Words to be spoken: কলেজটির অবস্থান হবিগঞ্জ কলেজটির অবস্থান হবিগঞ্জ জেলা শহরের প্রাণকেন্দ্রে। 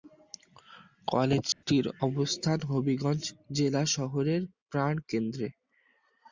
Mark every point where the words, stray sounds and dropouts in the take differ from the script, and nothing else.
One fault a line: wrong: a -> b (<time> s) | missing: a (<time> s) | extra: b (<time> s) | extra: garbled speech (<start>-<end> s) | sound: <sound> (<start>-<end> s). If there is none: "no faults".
sound: dropout (1.5-1.6 s)
missing: কলেজটির অবস্থান হবিগঞ্জ (3.2 s)